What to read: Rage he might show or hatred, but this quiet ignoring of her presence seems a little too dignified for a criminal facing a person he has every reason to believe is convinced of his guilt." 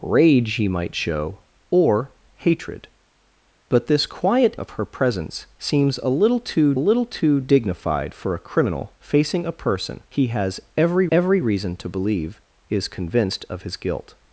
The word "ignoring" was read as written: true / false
false